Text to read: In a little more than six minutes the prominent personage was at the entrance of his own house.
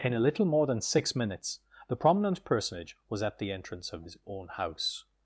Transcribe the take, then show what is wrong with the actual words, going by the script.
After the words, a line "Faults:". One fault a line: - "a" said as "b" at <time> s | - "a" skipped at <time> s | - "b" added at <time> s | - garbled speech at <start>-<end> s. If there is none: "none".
In a little more than six minutes the prominent personage was at the entrance of his own house.
Faults:
none